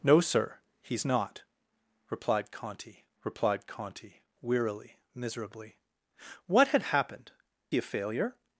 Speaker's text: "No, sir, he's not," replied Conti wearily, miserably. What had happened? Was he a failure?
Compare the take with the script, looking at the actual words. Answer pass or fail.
fail